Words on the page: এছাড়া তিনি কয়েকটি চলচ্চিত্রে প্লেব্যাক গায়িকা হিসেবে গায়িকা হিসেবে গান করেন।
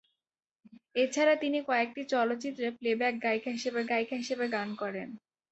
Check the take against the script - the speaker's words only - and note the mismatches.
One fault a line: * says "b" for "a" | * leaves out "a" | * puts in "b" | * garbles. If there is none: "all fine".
all fine